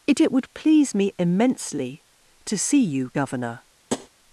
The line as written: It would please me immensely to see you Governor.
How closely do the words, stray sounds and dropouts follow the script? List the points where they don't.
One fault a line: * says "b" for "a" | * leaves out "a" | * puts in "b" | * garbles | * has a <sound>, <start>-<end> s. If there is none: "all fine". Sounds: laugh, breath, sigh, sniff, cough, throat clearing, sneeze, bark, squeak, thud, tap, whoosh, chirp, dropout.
* puts in "it"
* has a tap, 3.9-4.1 s